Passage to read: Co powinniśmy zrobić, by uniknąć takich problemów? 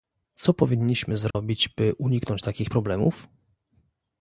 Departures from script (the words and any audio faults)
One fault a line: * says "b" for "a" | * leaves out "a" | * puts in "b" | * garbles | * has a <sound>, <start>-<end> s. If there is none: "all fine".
* has a dropout, 1.3-1.3 s